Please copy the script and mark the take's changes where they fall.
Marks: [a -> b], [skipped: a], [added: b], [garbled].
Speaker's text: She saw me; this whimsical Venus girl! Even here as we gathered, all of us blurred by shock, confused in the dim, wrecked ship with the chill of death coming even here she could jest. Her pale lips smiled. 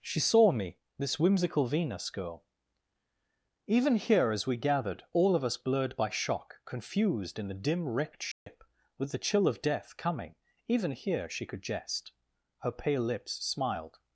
She saw me; this whimsical Venus girl! Even here as we gathered, all of us blurred by shock, confused in the dim, wrecked ship with the chill of death coming even here she could jest. Her pale lips smiled.